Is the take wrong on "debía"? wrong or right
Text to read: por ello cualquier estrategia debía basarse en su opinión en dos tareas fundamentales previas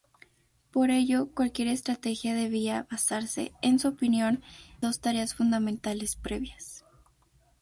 right